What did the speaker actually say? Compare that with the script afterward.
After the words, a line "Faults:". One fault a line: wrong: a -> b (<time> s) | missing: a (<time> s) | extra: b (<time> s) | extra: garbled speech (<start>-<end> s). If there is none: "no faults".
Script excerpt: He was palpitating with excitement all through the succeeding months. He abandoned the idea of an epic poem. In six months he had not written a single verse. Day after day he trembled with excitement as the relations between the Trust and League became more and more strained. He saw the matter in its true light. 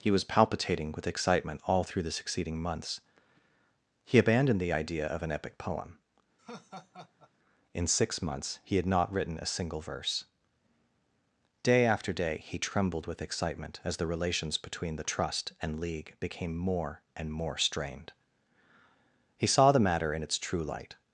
He was palpitating with excitement all through the succeeding months. He abandoned the idea of an epic poem. In six months he had not written a single verse. Day after day he trembled with excitement as the relations between the Trust and League became more and more strained. He saw the matter in its true light.
Faults:
no faults